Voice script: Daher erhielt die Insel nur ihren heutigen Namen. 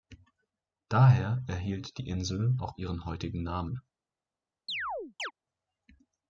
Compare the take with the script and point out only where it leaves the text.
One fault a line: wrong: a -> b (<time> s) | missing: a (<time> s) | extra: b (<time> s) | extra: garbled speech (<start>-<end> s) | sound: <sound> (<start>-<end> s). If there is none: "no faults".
wrong: nur -> auch (2.6 s)
sound: chirp (4.7-5.3 s)